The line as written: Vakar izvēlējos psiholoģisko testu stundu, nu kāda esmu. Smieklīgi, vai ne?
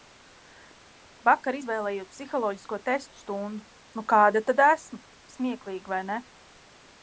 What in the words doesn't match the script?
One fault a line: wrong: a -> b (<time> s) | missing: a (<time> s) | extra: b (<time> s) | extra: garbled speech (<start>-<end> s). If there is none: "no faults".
extra: tad (4.5 s)